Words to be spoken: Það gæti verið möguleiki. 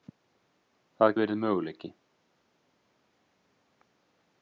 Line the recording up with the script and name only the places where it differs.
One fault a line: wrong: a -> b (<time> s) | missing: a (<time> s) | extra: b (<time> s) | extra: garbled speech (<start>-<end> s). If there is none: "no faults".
missing: gæti (1.1 s)